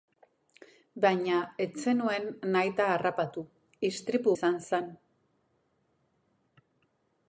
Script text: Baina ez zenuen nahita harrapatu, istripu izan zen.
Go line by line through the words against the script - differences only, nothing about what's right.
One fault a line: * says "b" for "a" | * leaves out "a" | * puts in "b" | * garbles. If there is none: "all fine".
all fine